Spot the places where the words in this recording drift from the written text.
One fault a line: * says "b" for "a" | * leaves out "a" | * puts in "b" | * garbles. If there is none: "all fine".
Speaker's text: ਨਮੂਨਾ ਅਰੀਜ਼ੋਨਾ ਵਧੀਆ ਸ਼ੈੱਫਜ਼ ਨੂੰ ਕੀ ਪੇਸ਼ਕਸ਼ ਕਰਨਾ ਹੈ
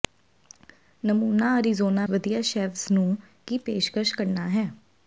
all fine